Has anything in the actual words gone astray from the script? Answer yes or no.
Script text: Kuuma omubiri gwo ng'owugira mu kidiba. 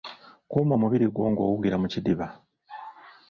no